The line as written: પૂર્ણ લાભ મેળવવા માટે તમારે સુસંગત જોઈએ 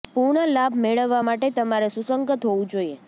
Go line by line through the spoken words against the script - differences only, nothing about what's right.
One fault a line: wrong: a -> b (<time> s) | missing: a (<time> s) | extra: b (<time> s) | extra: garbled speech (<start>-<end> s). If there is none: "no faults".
extra: હોવું (2.5 s)